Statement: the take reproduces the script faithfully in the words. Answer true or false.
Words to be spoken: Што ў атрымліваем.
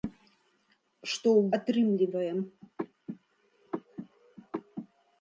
true